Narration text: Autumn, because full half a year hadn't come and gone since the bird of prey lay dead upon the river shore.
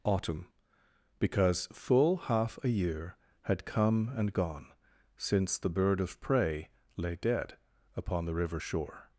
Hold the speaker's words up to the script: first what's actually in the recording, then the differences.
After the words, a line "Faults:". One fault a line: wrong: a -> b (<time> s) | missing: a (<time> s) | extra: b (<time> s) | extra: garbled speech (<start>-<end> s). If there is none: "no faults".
Autumn, because full half a year had come and gone since the bird of prey lay dead upon the river shore.
Faults:
wrong: hadn't -> had (3.4 s)